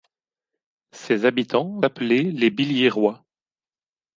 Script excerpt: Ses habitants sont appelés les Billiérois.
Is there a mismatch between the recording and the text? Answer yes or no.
yes